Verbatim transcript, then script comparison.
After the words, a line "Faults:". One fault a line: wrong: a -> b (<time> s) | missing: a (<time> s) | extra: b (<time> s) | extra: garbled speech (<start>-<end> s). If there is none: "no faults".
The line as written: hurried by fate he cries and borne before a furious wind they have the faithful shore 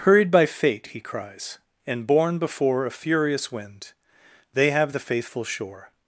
hurried by fate he cries and borne before a furious wind they have the faithful shore
Faults:
no faults